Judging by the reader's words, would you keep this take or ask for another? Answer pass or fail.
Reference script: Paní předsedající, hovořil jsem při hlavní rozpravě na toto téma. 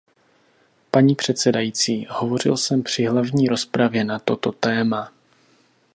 pass